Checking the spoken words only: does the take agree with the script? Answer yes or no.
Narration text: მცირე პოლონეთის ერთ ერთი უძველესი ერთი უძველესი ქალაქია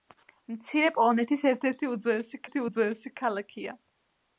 yes